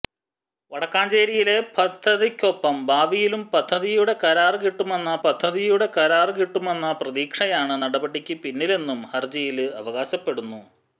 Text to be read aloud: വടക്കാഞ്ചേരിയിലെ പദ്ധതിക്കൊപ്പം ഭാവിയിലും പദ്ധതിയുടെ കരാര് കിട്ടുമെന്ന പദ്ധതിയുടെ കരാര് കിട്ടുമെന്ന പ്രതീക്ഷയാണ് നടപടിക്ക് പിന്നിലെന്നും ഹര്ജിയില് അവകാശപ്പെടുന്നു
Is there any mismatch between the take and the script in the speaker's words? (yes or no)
no